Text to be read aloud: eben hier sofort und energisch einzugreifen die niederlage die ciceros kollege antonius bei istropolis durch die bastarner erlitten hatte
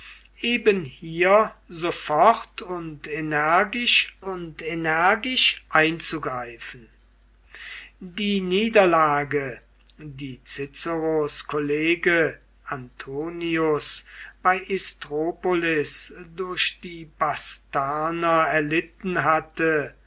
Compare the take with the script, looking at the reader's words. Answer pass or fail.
fail